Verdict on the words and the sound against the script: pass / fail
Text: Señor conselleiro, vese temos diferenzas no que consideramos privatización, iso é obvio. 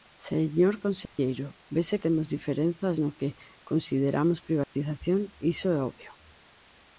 fail